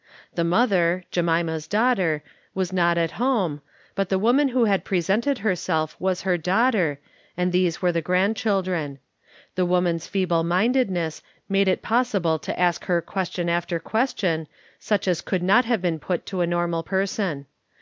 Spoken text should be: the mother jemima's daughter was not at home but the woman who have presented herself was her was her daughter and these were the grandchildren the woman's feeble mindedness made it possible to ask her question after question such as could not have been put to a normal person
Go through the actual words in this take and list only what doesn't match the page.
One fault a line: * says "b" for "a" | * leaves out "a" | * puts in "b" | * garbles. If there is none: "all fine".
* says "had" for "have"
* leaves out "was her"